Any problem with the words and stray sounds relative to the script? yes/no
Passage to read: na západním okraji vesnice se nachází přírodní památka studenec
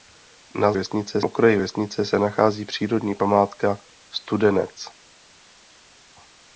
yes